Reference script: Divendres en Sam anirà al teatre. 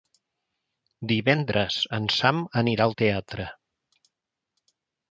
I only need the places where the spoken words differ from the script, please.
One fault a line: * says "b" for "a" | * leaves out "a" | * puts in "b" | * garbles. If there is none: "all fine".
all fine